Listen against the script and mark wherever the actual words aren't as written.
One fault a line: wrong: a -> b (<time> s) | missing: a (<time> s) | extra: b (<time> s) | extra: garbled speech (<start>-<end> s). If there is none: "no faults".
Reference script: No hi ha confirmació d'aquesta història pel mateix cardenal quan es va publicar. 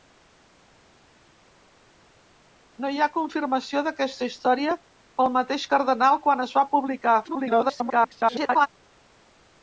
extra: garbled speech (7.2-8.7 s)